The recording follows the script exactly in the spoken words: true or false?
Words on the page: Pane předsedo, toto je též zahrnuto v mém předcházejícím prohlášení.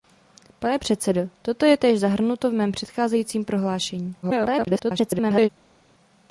false